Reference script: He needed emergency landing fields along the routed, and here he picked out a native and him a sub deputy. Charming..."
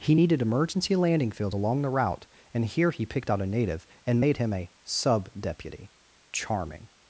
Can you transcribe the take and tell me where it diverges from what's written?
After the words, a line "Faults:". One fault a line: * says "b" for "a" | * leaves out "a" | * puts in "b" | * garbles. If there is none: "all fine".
He needed emergency landing fields along the route, and here he picked out a native and made him a sub deputy. Charming..."
Faults:
* says "route" for "routed"
* puts in "made"